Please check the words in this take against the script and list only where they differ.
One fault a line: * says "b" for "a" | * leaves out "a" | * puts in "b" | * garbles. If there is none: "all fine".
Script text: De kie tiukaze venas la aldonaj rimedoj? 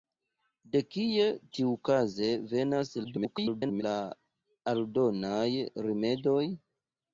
* garbles